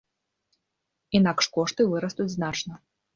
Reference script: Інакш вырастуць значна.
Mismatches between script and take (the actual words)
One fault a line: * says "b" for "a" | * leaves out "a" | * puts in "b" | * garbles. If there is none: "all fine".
* puts in "кошты"